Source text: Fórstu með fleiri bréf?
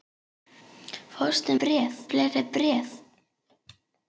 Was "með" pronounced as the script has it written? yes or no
no